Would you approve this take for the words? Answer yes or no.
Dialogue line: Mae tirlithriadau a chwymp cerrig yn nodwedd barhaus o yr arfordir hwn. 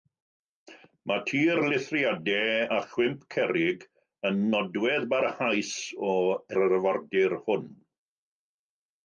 yes